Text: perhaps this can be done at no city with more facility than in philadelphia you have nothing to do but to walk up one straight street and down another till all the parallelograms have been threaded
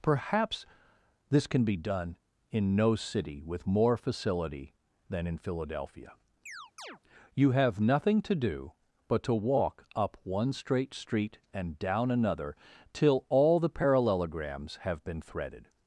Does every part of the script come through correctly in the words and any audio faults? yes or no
no